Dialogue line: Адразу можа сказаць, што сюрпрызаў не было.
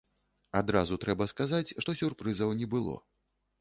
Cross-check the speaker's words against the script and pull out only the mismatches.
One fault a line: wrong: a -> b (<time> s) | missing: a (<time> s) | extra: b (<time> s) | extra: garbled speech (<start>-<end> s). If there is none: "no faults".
wrong: можа -> трэба (1.1 s)